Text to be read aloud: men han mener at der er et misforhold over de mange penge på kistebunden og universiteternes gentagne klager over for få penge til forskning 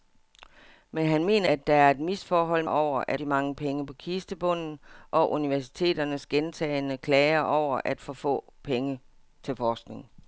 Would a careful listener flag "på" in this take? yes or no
no